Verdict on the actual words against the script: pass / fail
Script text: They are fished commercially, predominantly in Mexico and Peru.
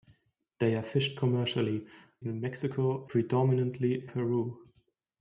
fail